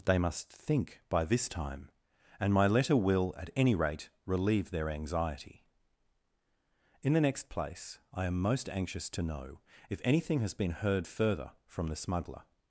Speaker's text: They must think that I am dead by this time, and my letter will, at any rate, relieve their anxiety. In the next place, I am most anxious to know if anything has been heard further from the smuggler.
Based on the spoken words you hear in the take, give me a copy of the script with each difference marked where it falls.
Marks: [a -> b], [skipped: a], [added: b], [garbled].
They must think [skipped: that I am dead] by this time, and my letter will, at any rate, relieve their anxiety. In the next place, I am most anxious to know if anything has been heard further from the smuggler.